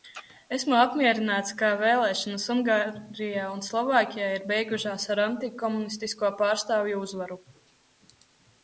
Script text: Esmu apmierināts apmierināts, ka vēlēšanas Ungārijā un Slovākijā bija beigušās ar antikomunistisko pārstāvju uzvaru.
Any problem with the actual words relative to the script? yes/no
yes